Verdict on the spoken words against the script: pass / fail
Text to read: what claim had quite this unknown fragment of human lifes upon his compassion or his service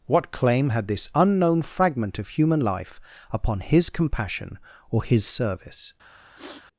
fail